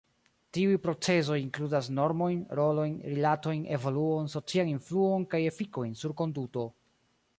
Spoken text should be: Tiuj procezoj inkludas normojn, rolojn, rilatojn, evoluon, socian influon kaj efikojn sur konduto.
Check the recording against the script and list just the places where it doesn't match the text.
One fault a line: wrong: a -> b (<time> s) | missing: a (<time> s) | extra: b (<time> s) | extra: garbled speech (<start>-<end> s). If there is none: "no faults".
no faults